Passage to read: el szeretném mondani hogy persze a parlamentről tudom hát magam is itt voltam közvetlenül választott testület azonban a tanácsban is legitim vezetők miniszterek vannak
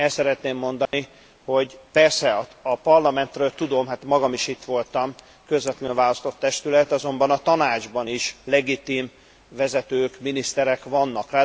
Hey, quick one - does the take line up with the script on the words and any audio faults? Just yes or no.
no